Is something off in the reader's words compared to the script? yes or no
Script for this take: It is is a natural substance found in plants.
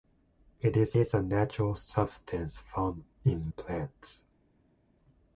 no